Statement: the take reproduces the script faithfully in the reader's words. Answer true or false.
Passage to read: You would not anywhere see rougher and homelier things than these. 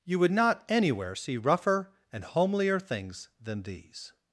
true